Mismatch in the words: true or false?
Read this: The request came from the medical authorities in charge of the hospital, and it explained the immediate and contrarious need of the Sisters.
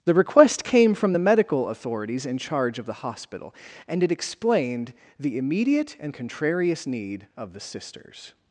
false